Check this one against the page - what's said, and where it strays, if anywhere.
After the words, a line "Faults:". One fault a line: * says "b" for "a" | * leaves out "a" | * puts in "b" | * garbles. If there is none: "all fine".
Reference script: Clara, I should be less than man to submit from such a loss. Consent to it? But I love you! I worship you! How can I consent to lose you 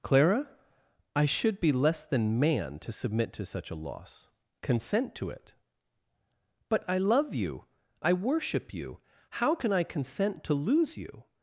Clara, I should be less than man to submit to such a loss. Consent to it? But I love you! I worship you! How can I consent to lose you
Faults:
* says "to" for "from"